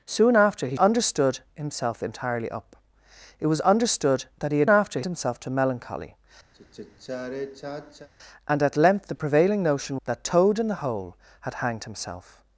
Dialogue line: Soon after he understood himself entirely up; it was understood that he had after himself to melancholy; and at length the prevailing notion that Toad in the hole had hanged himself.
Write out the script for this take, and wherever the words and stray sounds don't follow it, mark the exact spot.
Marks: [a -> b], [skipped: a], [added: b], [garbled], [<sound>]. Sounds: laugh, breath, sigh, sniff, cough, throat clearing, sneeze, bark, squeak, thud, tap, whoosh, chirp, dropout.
Soon after he understood himself entirely up; it was understood that he had after himself to melancholy; [sigh] and at length the prevailing notion that Toad in the hole had hanged himself.